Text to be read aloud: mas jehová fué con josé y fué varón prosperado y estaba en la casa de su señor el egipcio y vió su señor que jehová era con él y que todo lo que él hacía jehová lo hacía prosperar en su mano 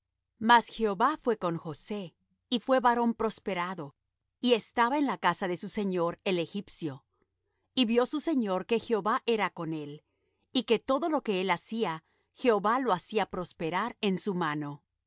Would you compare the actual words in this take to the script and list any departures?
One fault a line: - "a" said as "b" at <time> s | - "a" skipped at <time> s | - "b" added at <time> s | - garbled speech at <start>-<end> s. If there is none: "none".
none